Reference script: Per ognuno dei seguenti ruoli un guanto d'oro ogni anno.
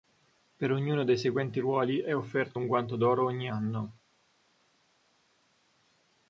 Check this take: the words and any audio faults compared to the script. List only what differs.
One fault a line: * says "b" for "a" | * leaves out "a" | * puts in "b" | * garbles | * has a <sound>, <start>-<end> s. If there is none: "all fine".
* puts in "è offerto"